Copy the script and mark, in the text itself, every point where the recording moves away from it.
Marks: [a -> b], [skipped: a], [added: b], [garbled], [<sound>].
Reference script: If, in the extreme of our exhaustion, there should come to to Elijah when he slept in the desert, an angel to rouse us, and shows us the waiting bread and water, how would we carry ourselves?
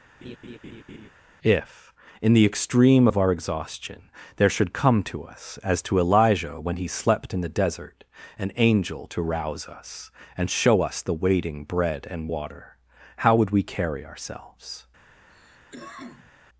[laugh] If, in the extreme of our exhaustion, there should come to [added: us as] to Elijah when he slept in the desert, an angel to rouse us, and [shows -> show] us the waiting bread and water, how would we carry ourselves? [cough]